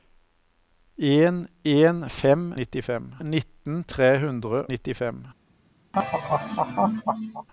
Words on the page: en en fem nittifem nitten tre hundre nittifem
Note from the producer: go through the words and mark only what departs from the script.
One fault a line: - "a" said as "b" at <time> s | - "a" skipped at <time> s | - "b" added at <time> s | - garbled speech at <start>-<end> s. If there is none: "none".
none